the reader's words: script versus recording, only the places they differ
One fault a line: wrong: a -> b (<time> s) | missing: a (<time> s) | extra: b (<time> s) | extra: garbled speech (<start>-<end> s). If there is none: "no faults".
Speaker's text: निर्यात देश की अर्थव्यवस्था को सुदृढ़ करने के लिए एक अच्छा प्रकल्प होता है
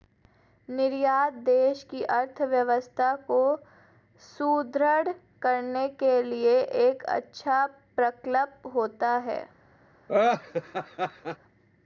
no faults